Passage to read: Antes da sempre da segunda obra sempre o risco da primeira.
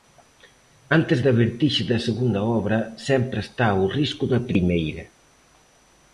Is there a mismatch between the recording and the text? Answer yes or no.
yes